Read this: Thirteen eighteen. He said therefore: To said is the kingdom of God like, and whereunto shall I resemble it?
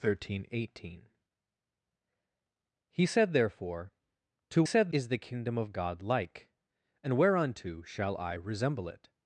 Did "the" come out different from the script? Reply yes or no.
no